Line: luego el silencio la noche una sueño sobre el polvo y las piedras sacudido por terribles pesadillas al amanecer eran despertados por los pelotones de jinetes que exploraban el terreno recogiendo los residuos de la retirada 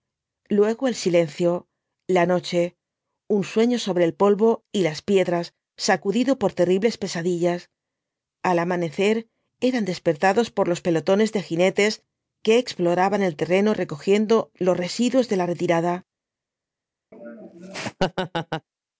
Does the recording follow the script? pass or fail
fail